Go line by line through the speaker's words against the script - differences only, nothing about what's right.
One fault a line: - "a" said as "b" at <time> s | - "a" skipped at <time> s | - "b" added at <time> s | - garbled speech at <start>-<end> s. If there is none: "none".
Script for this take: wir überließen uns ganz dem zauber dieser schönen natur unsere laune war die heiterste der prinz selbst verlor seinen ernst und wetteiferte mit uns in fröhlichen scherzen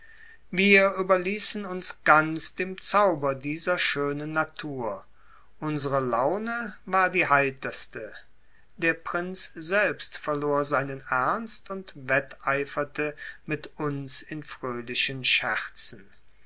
none